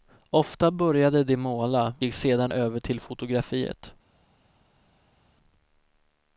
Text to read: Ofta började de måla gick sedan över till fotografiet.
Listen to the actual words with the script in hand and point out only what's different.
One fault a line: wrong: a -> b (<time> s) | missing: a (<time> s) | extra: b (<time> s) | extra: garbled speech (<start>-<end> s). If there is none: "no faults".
no faults